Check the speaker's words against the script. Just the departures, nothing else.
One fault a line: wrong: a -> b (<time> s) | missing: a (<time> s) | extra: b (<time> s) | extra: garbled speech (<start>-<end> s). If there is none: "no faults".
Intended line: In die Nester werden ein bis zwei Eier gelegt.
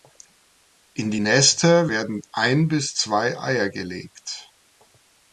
no faults